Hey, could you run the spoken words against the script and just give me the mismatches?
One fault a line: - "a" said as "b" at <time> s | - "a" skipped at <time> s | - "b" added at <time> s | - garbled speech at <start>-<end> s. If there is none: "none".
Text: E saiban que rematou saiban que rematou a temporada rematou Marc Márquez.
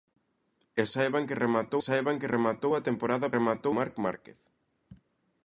none